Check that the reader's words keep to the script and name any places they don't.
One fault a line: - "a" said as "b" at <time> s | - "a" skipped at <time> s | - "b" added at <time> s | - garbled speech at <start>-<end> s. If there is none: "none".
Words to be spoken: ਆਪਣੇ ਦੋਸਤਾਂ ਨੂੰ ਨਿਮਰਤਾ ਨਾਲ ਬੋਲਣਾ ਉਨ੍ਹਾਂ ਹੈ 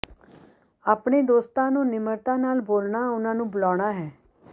- "ਨੂੰ ਬੁਲਾਉਣਾ" added at 3.4 s